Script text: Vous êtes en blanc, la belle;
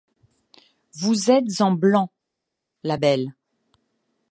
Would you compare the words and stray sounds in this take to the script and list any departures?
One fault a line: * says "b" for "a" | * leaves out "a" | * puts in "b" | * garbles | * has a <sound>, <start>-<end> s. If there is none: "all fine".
all fine